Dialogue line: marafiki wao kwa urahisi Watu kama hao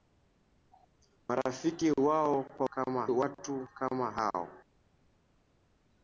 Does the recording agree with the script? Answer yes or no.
no